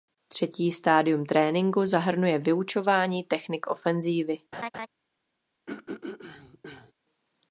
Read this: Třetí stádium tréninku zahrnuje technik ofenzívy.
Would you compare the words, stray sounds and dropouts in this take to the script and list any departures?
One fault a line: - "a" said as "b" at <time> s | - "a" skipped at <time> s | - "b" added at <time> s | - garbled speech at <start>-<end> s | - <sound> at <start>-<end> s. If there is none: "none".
- "vyučování" added at 2.4 s
- laugh at 4.5-4.9 s
- throat clearing at 5.7-6.9 s